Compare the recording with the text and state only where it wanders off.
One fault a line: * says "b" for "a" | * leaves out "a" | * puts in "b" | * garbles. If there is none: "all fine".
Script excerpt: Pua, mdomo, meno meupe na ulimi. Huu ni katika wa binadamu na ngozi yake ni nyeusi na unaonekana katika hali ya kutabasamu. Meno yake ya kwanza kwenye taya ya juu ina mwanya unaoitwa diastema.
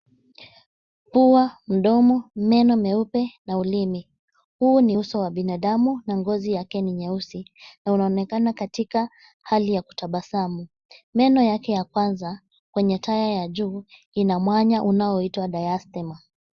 * says "uso" for "katika"